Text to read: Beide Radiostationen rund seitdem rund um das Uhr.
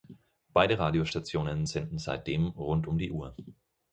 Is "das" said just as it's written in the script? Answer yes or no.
no